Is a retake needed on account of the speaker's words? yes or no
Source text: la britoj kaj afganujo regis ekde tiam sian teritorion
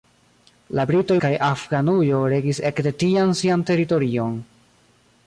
no